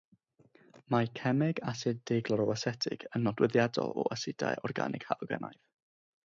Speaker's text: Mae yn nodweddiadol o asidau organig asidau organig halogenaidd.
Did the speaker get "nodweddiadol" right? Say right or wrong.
right